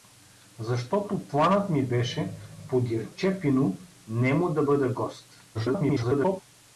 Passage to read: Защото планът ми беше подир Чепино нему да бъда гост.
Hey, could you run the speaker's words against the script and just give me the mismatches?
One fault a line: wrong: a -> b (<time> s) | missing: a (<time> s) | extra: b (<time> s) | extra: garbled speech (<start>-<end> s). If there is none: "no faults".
extra: garbled speech (5.5-6.4 s)